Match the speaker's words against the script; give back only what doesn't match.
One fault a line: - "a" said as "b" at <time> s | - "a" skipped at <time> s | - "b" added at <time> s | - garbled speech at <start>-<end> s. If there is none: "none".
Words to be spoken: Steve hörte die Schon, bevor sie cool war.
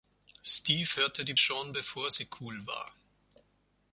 none